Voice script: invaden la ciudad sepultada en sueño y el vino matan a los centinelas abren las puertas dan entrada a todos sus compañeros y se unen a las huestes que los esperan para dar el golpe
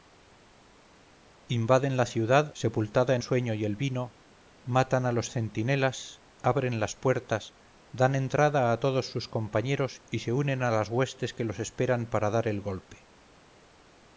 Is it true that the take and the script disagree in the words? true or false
false